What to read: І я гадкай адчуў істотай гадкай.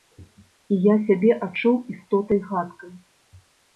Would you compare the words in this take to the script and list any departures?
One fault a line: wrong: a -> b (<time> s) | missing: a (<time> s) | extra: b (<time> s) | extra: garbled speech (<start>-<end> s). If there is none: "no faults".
wrong: гадкай -> сябе (1.1 s)